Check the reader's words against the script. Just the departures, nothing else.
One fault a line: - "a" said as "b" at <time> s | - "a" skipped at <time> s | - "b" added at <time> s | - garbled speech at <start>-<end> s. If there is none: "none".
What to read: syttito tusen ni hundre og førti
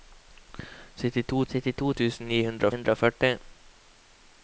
- "syttito" added at 1.5 s
- "hundre" added at 2.7 s